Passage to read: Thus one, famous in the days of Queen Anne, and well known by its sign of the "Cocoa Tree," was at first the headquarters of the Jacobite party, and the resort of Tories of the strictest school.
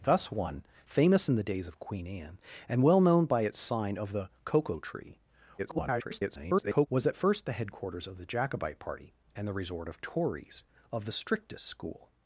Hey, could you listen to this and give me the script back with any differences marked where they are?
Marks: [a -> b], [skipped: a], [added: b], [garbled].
Thus one, famous in the days of Queen Anne, and well known by its sign of the "Cocoa Tree," [garbled] was at first the headquarters of the Jacobite party, and the resort of Tories of the strictest school.